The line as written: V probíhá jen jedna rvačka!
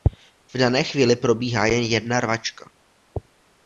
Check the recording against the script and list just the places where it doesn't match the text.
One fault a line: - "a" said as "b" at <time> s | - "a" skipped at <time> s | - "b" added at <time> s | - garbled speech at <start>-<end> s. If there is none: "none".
- "dané chvíli" added at 0.6 s